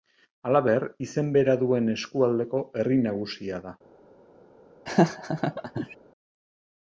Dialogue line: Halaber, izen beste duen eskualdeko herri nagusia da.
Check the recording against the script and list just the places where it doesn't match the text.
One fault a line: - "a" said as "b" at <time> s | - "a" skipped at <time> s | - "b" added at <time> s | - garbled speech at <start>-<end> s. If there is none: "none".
- "beste" said as "bera" at 1.4 s